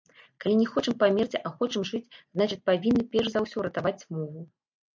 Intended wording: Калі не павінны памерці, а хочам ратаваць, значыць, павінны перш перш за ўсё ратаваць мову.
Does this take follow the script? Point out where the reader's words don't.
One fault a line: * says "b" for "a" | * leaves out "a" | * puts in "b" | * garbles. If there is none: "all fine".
* says "хочам" for "павінны"
* says "жыць" for "ратаваць"
* leaves out "перш"